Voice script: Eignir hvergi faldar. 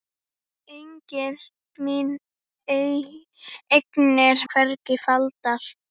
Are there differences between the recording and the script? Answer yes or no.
no